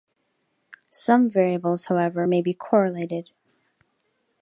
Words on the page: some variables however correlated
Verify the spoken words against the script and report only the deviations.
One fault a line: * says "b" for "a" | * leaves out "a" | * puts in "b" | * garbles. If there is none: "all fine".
* puts in "may be"